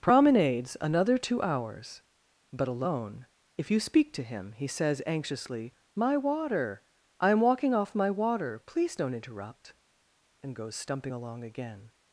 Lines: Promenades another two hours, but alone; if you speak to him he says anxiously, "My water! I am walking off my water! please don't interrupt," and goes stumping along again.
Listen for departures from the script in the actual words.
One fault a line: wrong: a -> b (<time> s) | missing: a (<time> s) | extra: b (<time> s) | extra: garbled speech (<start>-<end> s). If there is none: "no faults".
no faults